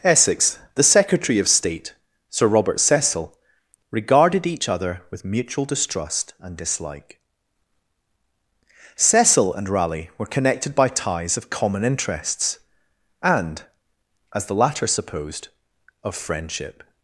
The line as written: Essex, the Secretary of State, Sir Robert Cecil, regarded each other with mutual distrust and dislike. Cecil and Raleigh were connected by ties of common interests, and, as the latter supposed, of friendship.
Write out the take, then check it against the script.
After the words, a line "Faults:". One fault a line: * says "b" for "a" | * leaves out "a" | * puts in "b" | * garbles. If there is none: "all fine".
Essex, the Secretary of State, Sir Robert Cecil, regarded each other with mutual distrust and dislike. Cecil and Raleigh were connected by ties of common interests, and, as the latter supposed, of friendship.
Faults:
all fine